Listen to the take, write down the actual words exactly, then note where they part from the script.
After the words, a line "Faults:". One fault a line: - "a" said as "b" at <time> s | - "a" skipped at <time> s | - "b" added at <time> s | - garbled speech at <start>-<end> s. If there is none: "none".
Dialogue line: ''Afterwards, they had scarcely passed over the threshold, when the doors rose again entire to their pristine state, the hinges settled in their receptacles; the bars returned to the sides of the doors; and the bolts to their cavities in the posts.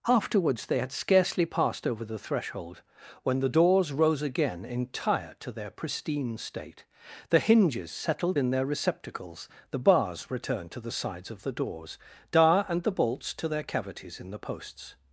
''Afterwards, they had scarcely passed over the threshold, when the doors rose again entire to their pristine state, the hinges settled in their receptacles; the bars returned to the sides of the doors; dar and the bolts to their cavities in the posts.
Faults:
- "dar" added at 12.3 s